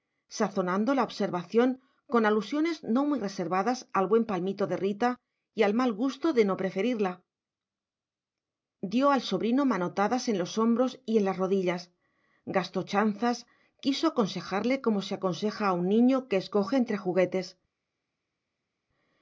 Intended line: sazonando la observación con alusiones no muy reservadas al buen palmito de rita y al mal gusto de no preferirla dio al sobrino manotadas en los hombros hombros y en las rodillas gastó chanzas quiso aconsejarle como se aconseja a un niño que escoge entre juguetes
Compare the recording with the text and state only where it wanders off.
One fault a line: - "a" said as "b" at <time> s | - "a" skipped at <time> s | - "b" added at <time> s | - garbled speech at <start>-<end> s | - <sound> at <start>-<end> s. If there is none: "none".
- "hombros" skipped at 11.0 s